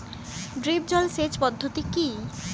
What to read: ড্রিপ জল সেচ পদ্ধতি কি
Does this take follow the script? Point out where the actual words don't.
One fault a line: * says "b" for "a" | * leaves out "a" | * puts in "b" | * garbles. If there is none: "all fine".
all fine